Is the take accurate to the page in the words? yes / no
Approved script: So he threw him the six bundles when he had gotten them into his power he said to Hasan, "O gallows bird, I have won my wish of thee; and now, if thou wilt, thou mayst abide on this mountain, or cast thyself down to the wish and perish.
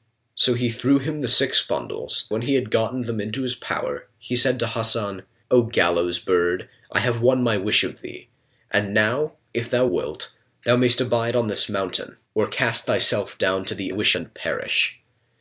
yes